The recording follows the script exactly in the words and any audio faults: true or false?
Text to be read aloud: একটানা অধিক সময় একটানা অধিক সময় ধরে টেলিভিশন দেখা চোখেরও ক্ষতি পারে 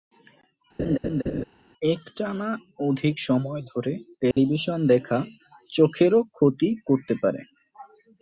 false